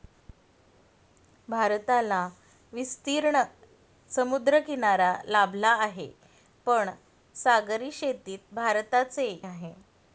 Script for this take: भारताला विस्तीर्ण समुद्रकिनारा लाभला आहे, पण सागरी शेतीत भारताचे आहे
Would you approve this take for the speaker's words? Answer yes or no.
yes